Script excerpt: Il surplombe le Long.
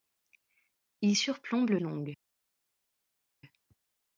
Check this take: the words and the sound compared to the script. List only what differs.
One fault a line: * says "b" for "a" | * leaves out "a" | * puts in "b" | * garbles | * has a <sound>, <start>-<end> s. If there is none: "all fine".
all fine